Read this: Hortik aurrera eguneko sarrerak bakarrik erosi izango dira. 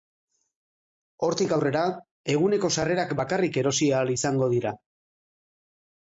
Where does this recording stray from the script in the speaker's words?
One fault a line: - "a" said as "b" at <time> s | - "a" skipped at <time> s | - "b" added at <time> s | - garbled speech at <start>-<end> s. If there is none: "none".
- "ahal" added at 4.0 s